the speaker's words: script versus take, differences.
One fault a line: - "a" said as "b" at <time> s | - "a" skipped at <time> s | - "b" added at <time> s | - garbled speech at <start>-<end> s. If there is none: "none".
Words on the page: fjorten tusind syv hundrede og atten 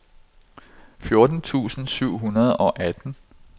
none